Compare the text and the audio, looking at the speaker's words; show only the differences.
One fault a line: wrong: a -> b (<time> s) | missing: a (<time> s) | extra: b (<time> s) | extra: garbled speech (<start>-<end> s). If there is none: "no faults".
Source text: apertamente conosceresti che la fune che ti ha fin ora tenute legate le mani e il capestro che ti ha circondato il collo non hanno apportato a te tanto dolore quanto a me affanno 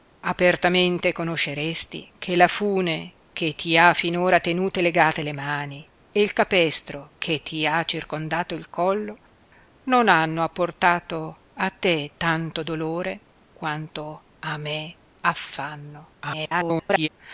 extra: garbled speech (16.2-17.1 s)